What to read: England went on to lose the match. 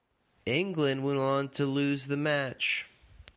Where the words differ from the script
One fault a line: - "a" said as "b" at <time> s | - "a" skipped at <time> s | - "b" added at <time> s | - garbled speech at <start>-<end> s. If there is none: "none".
none